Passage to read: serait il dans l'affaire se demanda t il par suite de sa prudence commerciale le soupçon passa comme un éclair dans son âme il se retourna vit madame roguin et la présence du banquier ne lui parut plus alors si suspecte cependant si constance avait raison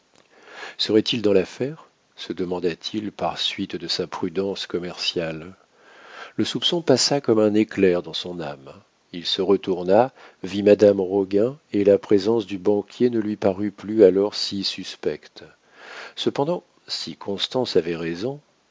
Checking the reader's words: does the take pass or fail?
pass